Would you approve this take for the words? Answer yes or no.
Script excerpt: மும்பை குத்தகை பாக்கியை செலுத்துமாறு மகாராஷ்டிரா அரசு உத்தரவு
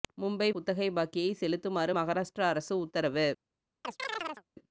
yes